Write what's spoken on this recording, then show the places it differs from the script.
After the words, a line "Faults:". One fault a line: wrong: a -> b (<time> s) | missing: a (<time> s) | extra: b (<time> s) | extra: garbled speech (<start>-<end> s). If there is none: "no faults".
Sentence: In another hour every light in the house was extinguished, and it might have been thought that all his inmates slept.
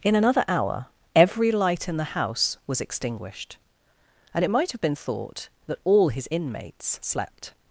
In another hour every light in the house was extinguished, and it might have been thought that all his inmates slept.
Faults:
no faults